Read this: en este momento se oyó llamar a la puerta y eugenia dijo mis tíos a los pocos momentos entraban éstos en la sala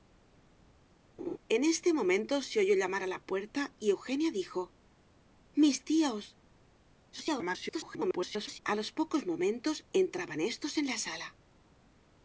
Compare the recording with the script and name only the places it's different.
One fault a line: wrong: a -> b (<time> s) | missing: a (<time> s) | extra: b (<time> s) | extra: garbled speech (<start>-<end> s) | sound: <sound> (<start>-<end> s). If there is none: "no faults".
sound: laugh (1.2-1.4 s)
extra: garbled speech (7.1-8.6 s)